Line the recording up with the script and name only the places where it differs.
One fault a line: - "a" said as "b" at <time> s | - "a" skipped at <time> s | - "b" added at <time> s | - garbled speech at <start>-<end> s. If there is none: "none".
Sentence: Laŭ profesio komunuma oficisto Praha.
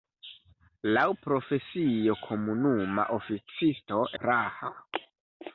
none